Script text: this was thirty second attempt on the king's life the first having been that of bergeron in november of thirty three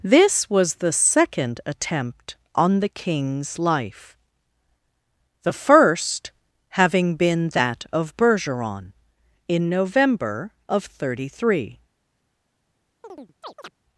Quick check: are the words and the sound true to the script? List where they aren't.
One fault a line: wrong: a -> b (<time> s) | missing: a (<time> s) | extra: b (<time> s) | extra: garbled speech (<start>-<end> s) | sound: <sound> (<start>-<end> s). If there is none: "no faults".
wrong: thirty -> the (0.8 s)
sound: chirp (13.0-13.7 s)